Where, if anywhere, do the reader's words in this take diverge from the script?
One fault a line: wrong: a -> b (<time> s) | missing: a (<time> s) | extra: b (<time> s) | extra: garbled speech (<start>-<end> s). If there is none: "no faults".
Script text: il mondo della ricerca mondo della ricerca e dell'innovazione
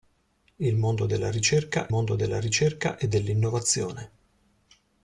no faults